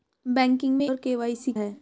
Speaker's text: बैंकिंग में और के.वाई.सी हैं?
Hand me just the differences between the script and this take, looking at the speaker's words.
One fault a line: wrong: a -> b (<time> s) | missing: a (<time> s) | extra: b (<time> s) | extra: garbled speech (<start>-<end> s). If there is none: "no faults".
no faults